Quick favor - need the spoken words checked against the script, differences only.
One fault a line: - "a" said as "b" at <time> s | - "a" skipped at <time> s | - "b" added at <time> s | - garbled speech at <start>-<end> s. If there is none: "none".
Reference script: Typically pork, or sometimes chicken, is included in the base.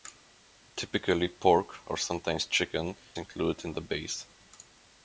- "is" skipped at 3.0 s